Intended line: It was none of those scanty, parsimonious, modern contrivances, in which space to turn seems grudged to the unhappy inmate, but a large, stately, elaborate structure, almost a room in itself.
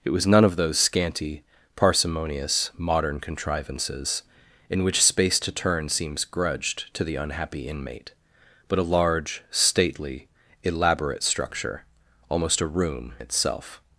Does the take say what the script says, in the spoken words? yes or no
no